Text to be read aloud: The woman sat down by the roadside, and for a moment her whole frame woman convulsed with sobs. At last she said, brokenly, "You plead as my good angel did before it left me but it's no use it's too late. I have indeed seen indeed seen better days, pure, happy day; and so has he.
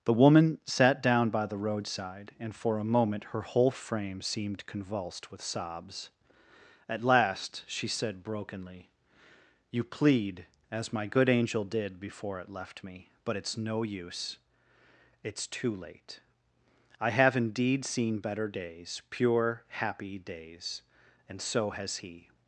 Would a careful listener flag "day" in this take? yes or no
yes